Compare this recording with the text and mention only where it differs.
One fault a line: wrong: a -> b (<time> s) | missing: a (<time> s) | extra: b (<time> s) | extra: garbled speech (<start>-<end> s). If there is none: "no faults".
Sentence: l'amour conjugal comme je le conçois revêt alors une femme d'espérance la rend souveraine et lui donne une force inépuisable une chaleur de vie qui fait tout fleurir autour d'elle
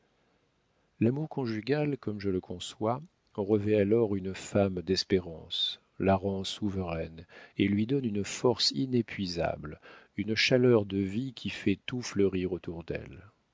no faults